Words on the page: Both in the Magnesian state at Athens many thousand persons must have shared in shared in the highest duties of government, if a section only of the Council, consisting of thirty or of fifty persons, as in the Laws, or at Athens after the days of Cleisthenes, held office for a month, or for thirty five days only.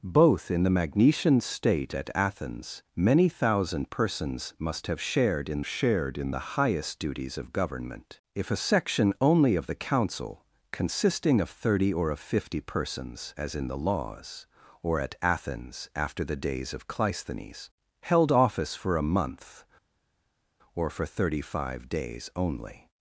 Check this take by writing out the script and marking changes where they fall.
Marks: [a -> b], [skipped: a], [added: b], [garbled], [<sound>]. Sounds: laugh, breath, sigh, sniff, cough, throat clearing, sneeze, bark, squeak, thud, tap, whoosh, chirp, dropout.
Both in the Magnesian state at Athens many thousand persons must have shared in shared in the highest duties of government, if a section only of the Council, consisting of thirty or of fifty persons, as in the Laws, or at Athens after the days of Cleisthenes, held office for a month, or for thirty five days only.